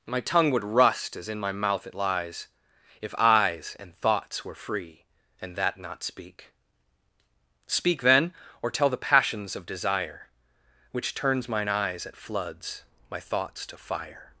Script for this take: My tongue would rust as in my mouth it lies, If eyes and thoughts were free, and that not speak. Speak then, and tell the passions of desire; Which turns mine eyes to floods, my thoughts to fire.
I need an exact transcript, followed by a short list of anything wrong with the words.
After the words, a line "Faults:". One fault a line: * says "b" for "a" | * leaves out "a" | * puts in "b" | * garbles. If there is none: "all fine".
My tongue would rust as in my mouth it lies, If eyes and thoughts were free, and that not speak. Speak then, or tell the passions of desire; Which turns mine eyes at floods, my thoughts to fire.
Faults:
* says "or" for "and"
* says "at" for "to"